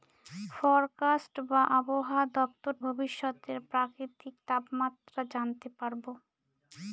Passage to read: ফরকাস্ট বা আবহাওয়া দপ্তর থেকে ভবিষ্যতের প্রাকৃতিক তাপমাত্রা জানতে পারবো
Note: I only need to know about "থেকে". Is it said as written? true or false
false